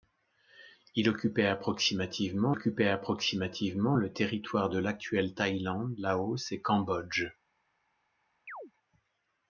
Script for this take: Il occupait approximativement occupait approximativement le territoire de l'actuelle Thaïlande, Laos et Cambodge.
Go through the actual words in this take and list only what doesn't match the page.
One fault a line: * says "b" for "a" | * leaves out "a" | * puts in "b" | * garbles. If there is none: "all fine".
all fine